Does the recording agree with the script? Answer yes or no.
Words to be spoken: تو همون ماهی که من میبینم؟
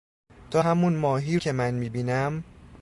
yes